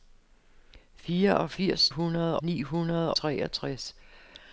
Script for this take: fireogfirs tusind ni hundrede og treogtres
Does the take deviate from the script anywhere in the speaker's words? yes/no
yes